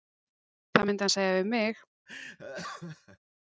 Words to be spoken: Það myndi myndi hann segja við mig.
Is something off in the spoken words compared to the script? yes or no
yes